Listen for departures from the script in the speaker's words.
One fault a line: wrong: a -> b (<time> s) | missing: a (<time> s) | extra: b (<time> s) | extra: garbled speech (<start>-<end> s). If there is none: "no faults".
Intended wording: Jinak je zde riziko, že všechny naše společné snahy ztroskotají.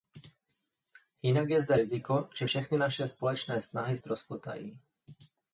no faults